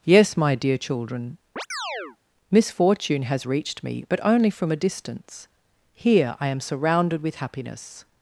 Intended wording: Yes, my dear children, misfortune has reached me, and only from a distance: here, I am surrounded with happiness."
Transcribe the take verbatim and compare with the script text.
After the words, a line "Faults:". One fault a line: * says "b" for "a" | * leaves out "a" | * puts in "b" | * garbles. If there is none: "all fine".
Yes, my dear children, misfortune has reached me, but only from a distance: here, I am surrounded with happiness."
Faults:
* says "but" for "and"